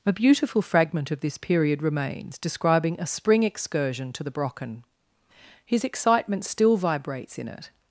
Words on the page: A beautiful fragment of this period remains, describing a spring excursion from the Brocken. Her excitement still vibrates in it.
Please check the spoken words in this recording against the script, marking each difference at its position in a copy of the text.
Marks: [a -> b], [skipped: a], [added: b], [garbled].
A beautiful fragment of this period remains, describing a spring excursion [from -> to] the Brocken. [Her -> His] excitement still vibrates in it.